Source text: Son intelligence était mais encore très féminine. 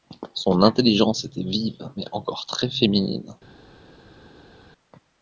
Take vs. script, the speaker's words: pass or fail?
fail